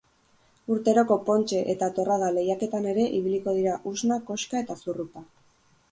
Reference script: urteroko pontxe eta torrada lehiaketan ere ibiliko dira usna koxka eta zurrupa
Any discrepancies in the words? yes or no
no